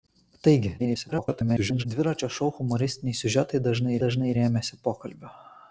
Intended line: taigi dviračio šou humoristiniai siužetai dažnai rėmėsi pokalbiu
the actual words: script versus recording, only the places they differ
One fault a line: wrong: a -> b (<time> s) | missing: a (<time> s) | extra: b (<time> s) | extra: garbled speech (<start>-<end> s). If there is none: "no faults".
extra: garbled speech (0.8-1.8 s)
extra: dažnai (4.1 s)